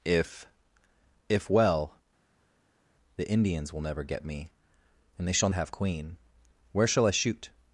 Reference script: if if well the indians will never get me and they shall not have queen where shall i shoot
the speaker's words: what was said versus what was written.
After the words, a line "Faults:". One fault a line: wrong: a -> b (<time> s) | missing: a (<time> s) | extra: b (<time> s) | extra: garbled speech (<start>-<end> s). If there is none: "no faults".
if if well the indians will never get me and they shall have queen where shall i shoot
Faults:
missing: not (5.5 s)